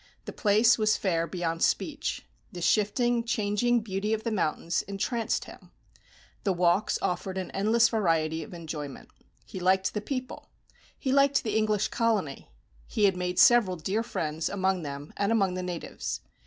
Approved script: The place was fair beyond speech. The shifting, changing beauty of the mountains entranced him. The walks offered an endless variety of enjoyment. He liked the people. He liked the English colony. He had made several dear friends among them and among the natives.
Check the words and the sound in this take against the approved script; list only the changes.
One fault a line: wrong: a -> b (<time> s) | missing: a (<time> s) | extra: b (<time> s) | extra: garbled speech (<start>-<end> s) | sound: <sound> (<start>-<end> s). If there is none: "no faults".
no faults